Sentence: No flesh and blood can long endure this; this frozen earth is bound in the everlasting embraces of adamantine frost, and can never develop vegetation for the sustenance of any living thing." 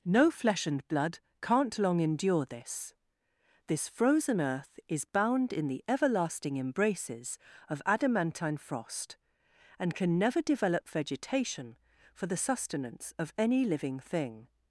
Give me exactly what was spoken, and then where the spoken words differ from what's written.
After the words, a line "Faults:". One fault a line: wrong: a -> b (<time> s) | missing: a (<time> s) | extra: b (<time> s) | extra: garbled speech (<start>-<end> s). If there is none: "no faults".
No flesh and blood can't long endure this; this frozen earth is bound in the everlasting embraces of adamantine frost, and can never develop vegetation for the sustenance of any living thing."
Faults:
wrong: can -> can't (1.4 s)